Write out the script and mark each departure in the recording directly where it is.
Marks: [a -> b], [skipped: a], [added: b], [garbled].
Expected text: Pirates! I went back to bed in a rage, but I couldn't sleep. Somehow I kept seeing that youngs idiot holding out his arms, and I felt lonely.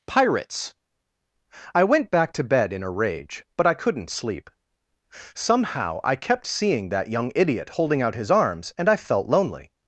Pirates! I went back to bed in a rage, but I couldn't sleep. Somehow I kept seeing that [youngs -> young] idiot holding out his arms, and I felt lonely.